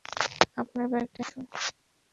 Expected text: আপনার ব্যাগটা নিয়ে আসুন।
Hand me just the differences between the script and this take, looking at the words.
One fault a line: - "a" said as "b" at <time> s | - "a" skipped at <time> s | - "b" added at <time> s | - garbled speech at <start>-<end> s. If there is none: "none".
- "নিয়ে" skipped at 1.2 s